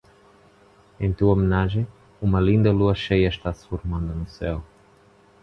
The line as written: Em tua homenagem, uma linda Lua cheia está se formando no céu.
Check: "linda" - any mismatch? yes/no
no